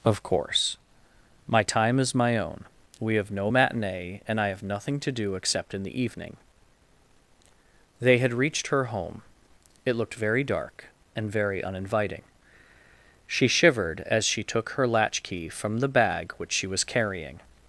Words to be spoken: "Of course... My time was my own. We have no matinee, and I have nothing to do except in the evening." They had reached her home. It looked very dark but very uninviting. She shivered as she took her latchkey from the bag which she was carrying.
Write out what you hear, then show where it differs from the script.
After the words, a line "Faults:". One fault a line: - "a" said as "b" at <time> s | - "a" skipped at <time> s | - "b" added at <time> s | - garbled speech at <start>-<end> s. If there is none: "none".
"Of course... My time is my own. We have no matinee, and I have nothing to do except in the evening." They had reached her home. It looked very dark and very uninviting. She shivered as she took her latchkey from the bag which she was carrying.
Faults:
- "was" said as "is" at 2.0 s
- "but" said as "and" at 11.2 s